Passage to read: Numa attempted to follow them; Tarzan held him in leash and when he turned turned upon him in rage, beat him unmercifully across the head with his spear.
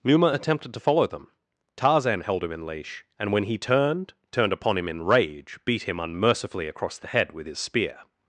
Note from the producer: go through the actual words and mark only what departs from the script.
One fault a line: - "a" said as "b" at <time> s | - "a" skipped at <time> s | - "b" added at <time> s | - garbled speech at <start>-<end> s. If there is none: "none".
none